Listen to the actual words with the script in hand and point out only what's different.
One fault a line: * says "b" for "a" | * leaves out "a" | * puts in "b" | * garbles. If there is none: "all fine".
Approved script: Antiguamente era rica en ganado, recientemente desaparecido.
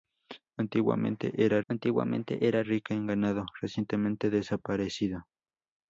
* puts in "antiguamente era"